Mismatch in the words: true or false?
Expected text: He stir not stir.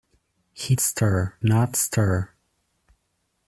false